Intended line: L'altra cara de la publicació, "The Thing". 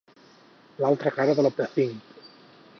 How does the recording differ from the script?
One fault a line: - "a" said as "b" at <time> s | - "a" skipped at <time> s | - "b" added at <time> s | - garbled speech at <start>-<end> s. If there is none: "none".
- "publicació" skipped at 1.5 s